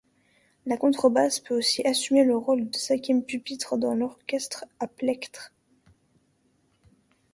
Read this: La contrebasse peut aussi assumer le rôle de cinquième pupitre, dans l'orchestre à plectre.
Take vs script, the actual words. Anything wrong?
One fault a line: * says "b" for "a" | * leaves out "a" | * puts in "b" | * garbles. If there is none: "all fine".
all fine